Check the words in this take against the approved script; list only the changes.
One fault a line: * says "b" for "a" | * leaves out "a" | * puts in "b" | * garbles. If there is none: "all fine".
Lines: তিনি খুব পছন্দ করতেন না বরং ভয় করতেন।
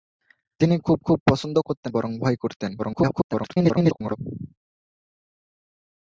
* puts in "খুব"
* leaves out "না"
* garbles